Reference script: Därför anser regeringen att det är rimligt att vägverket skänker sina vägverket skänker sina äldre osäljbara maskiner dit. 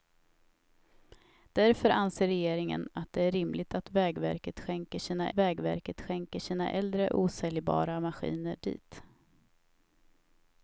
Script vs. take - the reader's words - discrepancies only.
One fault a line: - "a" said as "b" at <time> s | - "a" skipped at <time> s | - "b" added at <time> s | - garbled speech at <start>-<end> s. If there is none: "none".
none